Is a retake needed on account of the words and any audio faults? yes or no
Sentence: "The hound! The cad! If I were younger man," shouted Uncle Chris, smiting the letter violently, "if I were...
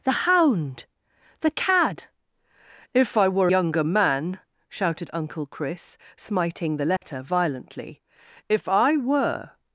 yes